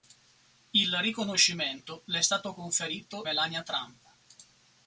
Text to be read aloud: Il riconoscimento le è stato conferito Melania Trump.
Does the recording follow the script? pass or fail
pass